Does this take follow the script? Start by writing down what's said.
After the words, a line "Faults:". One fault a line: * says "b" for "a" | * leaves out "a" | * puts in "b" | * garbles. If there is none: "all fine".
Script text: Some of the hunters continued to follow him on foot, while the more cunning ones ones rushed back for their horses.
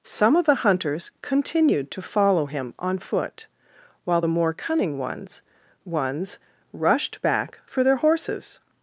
Some of the hunters continued to follow him on foot, while the more cunning ones ones rushed back for their horses.
Faults:
all fine